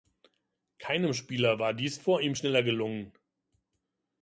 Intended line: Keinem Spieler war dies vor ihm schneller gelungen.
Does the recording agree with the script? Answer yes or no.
yes